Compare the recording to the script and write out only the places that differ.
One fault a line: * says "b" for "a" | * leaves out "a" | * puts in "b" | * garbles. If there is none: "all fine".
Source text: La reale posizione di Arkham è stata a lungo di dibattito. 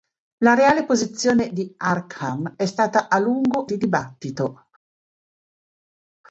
all fine